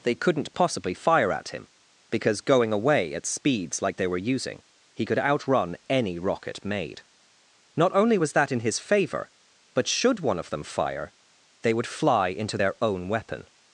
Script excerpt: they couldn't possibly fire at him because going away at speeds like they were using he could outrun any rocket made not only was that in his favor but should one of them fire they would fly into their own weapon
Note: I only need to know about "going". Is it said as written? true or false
true